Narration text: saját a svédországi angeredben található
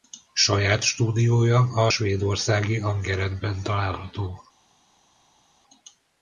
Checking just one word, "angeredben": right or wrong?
right